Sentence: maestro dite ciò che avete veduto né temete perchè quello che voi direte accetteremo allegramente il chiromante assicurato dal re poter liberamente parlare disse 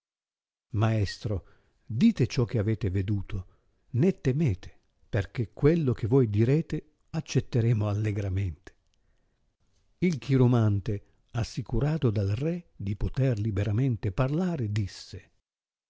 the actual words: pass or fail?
fail